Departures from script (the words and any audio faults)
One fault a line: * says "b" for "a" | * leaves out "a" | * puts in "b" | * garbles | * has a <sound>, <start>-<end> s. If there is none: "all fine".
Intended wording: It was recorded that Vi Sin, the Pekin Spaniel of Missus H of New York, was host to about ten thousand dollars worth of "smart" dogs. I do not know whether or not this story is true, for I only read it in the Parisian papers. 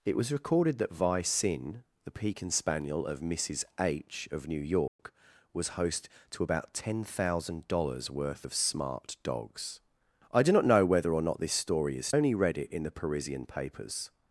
* has a dropout, 4.9-5.0 s
* leaves out "true for I"